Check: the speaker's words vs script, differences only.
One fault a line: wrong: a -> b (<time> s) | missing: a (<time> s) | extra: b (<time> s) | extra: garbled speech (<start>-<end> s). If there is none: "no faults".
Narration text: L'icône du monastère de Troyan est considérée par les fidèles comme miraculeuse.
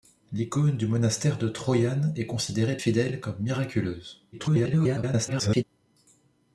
missing: par les (2.8 s)
extra: garbled speech (4.3-5.6 s)